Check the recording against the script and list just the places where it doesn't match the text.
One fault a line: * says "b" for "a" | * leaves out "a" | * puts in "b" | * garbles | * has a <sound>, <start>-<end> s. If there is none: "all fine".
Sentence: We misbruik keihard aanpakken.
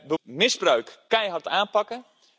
all fine